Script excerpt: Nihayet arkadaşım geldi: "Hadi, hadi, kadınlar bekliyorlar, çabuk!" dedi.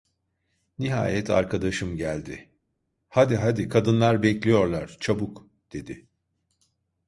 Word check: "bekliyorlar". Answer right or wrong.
right